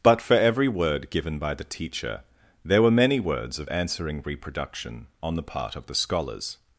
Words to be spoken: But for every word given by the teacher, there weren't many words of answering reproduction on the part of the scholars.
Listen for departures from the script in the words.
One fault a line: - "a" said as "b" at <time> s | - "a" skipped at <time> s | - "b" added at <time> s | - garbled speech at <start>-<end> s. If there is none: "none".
- "weren't" said as "were" at 2.8 s